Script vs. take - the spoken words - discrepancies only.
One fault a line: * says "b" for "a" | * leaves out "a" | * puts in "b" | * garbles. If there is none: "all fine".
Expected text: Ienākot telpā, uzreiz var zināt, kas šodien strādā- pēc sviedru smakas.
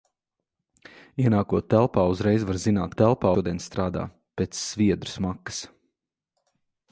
* says "telpā" for "kas"